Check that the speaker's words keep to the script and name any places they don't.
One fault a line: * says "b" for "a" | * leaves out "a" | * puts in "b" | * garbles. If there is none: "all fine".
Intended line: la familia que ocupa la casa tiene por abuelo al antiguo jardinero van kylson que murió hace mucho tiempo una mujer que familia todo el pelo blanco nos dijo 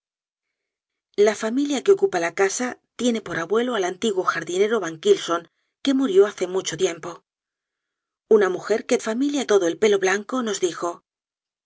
all fine